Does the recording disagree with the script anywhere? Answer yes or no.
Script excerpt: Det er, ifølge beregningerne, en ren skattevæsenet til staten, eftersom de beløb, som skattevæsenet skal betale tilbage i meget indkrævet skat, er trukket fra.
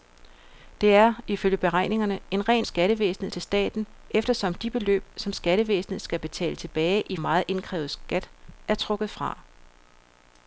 no